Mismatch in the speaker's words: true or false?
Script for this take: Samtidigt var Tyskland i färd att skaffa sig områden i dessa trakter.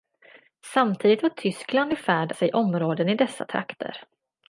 true